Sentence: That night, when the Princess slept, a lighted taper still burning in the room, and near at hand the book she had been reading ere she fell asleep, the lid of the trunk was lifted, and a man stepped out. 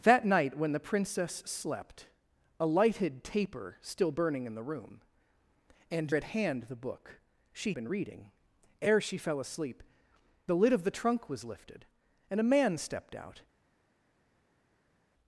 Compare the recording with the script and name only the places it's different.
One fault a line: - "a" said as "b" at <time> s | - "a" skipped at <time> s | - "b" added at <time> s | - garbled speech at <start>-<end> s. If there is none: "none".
- "near" skipped at 6.2 s
- "had" skipped at 7.7 s